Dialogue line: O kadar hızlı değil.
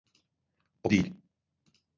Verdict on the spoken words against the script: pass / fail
fail